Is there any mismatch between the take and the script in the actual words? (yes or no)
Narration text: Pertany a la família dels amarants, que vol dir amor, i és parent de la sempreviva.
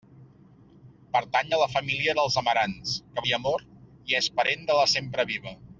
yes